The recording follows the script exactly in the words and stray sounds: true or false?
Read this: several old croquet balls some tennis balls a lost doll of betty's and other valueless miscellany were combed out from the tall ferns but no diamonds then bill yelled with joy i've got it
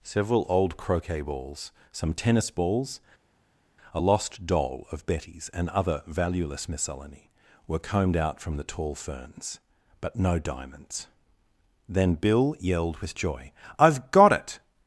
true